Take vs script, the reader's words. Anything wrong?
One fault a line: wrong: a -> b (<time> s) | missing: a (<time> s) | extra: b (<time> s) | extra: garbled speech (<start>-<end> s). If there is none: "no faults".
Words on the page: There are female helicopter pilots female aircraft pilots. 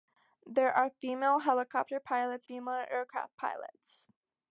no faults